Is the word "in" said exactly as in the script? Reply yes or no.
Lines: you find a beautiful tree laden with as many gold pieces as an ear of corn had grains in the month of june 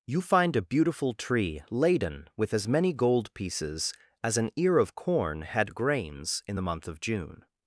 yes